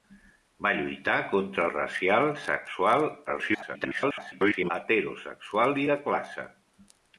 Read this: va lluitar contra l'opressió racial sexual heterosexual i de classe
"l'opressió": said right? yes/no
no